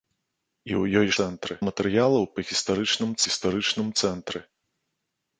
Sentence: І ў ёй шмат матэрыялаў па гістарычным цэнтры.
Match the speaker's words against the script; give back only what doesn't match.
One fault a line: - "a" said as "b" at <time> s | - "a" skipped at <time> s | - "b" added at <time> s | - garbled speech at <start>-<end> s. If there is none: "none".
- "шмат" said as "цэнтры" at 1.2 s
- "гістарычным" added at 3.3 s